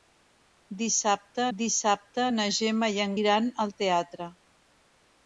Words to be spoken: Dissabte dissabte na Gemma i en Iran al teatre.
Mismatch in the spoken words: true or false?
false